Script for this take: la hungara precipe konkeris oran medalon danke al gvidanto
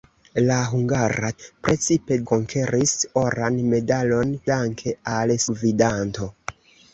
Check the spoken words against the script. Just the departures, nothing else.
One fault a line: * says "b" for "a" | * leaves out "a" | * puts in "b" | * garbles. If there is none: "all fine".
all fine